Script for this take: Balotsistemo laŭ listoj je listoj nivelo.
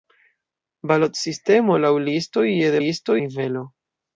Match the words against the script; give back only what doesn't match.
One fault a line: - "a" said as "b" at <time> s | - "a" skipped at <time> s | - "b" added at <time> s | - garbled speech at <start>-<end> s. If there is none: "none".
none